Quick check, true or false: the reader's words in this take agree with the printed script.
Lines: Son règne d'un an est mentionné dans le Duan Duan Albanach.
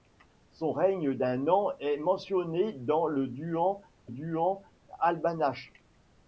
true